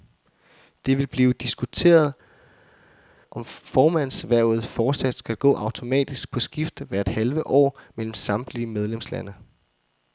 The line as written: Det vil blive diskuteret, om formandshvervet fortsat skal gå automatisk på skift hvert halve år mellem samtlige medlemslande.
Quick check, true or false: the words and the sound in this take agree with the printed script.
true